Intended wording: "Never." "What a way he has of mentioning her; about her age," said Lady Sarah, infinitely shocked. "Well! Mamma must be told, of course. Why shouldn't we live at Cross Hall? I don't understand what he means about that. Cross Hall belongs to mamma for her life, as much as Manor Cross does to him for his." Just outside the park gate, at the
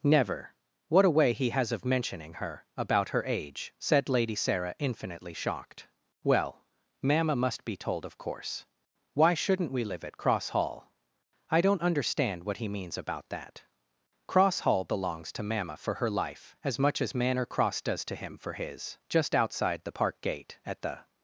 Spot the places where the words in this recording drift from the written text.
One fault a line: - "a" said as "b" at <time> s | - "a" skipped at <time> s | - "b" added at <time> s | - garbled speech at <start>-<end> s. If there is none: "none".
none